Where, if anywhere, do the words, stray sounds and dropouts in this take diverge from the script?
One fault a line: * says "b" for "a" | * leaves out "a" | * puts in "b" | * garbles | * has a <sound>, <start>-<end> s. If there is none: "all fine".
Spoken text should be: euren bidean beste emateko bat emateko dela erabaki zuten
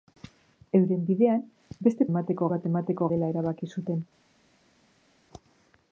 all fine